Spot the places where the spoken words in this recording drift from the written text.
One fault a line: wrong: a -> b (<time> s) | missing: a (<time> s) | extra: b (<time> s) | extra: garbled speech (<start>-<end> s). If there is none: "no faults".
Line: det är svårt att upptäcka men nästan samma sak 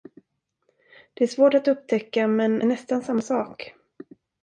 no faults